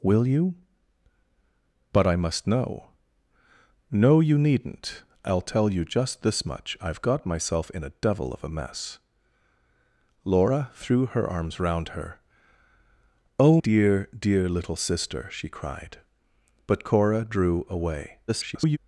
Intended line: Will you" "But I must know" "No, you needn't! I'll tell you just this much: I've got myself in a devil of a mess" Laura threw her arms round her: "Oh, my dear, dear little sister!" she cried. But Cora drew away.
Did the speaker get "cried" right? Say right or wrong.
right